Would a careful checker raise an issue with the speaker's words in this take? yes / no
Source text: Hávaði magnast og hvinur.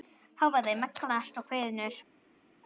no